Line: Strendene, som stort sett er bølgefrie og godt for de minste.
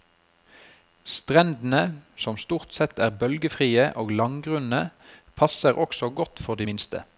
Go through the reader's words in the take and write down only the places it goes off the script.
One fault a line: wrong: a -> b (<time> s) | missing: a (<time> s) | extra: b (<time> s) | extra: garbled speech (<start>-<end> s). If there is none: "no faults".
extra: langgrunne passer også (4.1 s)